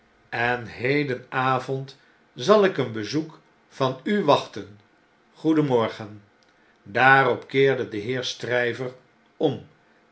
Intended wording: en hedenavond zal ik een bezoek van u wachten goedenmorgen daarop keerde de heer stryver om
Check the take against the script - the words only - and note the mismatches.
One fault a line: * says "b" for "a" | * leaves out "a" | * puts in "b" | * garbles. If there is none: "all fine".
all fine